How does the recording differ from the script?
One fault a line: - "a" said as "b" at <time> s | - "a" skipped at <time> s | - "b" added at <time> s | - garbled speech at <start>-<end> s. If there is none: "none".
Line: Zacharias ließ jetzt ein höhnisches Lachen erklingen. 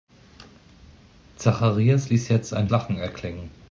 - "höhnisches" skipped at 2.7 s